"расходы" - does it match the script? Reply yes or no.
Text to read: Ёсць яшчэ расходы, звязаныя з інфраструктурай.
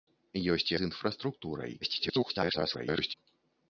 no